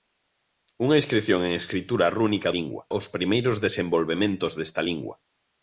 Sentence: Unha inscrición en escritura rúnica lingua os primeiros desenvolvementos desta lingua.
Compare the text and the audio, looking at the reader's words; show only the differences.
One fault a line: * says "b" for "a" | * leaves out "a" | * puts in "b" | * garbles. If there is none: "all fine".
all fine